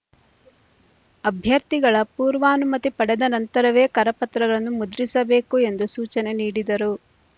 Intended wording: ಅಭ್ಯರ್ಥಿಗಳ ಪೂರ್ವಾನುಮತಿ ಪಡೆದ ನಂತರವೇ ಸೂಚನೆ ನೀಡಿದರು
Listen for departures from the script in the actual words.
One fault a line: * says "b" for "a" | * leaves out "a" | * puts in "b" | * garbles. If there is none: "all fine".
* puts in "ಕರಪತ್ರಗಳನ್ನು ಮುದ್ರಿಸಬೇಕು ಎಂದು"